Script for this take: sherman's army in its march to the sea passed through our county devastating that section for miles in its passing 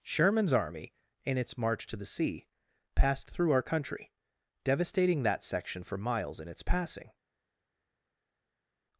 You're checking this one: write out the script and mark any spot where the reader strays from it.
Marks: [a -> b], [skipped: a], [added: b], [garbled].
sherman's army in its march to the sea passed through our [county -> country] devastating that section for miles in its passing